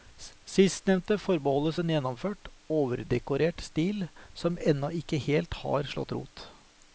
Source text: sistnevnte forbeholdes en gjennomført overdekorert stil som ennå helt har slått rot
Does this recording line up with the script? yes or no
no